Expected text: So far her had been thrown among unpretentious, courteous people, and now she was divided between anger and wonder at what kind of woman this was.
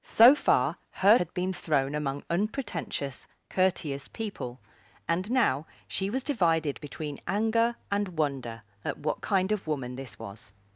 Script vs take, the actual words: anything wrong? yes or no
no